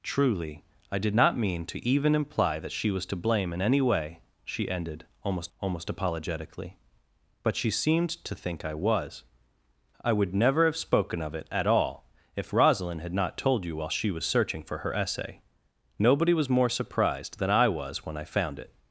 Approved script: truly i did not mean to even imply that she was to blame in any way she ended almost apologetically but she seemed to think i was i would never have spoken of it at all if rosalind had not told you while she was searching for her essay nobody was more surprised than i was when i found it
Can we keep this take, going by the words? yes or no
no